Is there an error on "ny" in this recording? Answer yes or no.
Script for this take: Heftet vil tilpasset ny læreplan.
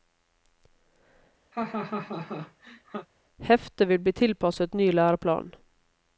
no